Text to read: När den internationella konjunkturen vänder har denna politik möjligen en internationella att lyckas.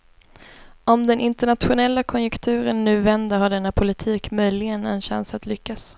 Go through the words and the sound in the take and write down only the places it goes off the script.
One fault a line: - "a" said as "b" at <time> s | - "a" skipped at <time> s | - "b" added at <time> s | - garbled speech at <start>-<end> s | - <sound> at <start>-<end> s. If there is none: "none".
- "När" said as "Om" at 0.8 s
- "nu" added at 2.8 s
- "internationella" said as "chans" at 5.0 s